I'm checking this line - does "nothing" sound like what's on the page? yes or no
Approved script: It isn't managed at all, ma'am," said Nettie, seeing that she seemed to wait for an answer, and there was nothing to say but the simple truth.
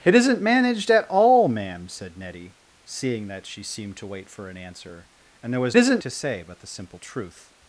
no